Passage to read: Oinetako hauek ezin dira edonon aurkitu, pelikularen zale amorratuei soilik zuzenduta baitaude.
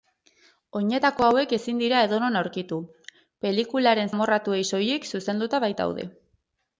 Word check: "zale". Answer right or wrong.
wrong